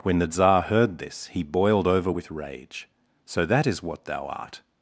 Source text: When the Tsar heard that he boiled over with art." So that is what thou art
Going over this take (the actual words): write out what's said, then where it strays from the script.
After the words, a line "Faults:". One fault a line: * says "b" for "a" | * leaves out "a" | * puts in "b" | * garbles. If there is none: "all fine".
When the Tsar heard this he boiled over with rage." So that is what thou art
Faults:
* says "this" for "that"
* says "rage" for "art"